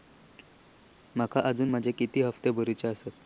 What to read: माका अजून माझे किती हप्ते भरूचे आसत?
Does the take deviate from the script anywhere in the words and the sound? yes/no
no